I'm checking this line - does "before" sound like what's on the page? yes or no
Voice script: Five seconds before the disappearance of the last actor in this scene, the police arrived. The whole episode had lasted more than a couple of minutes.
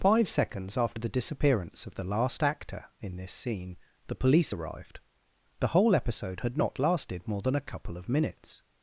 no